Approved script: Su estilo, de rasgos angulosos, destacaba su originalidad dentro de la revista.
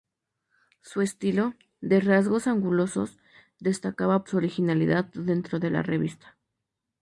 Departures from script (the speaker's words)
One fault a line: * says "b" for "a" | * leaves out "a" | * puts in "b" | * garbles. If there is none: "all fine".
all fine